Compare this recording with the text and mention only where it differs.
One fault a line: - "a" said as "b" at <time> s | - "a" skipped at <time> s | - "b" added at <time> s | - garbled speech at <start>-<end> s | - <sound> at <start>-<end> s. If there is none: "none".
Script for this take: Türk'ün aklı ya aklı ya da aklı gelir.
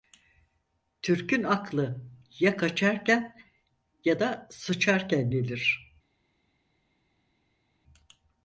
- "aklı" said as "kaçarken" at 2.6 s
- "aklı" said as "sıçarken" at 4.5 s